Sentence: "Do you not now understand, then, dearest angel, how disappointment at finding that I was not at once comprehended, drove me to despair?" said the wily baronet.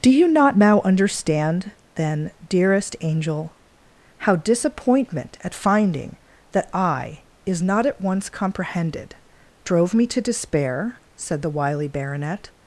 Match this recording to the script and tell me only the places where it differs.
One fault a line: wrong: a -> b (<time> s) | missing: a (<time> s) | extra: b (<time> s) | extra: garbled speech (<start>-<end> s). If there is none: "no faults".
wrong: was -> is (7.5 s)